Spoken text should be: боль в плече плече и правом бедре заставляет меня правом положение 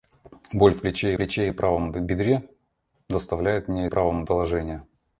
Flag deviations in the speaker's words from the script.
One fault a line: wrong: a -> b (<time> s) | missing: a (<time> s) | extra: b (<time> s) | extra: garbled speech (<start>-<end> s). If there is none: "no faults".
no faults